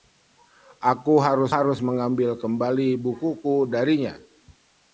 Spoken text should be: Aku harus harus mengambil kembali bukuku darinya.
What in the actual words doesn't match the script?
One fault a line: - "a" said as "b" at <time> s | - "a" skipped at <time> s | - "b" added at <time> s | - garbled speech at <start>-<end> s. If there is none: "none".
none